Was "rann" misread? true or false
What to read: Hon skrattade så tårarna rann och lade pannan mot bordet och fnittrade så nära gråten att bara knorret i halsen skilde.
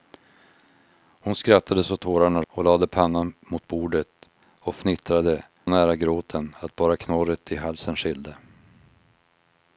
true